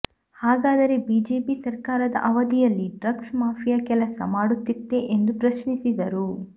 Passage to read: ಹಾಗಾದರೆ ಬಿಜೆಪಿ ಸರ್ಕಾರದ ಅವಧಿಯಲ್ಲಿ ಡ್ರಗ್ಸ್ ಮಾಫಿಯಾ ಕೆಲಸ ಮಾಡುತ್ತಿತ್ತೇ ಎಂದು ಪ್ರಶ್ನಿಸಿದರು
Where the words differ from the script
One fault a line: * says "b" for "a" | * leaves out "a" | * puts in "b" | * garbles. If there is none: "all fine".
all fine